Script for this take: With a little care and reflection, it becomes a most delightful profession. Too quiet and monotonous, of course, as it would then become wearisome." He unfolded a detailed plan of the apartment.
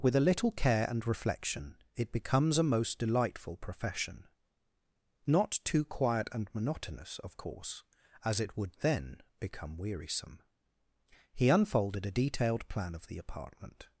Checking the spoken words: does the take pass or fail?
fail